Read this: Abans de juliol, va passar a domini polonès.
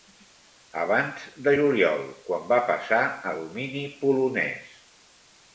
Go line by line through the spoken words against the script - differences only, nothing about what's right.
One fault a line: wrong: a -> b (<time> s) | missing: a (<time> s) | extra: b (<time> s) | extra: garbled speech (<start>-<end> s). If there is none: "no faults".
extra: quan (2.3 s)